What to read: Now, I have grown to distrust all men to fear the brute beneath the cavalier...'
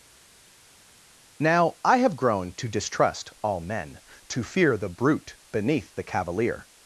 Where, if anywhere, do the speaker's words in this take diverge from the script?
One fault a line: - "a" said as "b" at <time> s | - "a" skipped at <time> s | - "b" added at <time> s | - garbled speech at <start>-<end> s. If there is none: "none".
none